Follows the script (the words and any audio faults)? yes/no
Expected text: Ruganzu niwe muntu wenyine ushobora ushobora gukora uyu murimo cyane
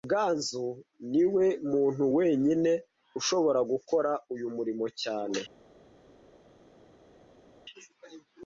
no